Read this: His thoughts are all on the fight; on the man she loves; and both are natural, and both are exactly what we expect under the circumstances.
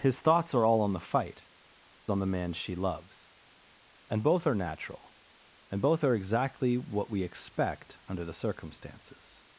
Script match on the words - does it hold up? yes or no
yes